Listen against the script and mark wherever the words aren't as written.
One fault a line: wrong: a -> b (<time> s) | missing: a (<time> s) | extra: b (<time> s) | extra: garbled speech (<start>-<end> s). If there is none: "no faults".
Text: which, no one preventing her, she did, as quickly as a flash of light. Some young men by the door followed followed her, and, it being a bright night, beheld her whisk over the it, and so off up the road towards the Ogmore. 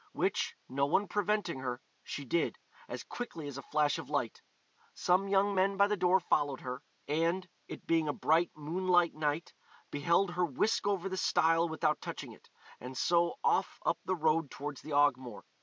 missing: followed (6.6 s)
extra: moonlight (8.5 s)
extra: stile without touching (11.2 s)